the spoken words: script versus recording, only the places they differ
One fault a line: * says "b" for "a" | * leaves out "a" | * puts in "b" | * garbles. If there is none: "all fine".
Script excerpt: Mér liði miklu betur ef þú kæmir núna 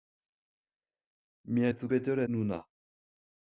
* leaves out "liði miklu betur"
* says "betur" for "kæmir"